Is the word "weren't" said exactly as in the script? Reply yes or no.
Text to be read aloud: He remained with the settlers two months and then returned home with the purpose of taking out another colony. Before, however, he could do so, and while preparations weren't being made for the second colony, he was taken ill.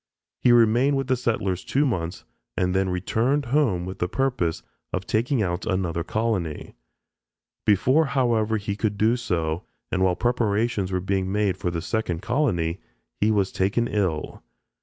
no